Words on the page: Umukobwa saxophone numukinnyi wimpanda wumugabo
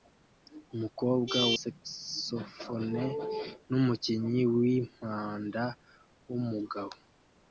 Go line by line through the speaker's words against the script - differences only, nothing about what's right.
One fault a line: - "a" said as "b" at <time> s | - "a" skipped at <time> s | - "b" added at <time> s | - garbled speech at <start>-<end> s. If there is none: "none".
none